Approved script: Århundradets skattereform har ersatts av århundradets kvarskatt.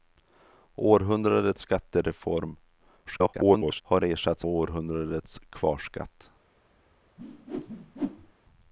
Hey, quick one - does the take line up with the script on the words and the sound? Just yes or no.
no